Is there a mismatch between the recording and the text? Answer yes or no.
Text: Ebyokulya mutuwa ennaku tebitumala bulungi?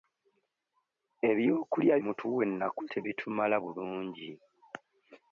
no